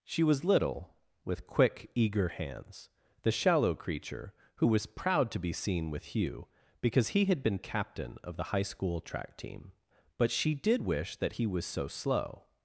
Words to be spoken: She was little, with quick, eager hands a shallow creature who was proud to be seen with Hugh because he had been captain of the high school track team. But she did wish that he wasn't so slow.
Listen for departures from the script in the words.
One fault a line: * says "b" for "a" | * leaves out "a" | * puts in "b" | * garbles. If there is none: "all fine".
* says "the" for "a"
* says "was" for "wasn't"